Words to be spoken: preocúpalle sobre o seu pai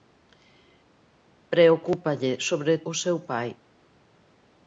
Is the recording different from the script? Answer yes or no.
no